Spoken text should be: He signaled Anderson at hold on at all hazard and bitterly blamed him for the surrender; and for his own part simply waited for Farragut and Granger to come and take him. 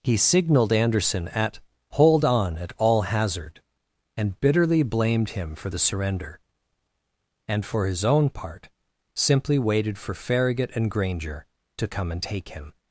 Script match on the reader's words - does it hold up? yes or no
yes